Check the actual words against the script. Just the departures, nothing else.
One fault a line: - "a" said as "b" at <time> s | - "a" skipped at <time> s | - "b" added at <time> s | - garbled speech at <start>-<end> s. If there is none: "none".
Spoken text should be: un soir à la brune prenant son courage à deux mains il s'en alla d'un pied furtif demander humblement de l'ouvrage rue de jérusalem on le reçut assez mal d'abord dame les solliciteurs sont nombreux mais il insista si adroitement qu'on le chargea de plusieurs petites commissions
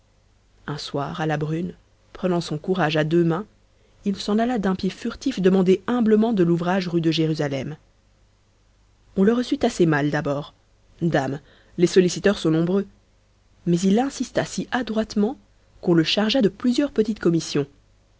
none